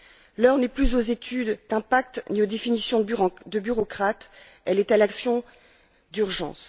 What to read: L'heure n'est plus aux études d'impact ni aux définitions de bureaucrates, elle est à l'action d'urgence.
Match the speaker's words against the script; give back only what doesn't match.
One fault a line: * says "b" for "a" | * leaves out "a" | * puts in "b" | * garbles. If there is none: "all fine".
all fine